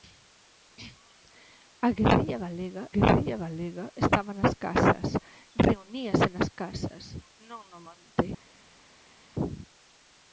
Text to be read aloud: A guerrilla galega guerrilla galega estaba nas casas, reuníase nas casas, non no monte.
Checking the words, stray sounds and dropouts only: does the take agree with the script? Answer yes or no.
yes